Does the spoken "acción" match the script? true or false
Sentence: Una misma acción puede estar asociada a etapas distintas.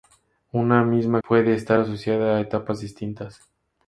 false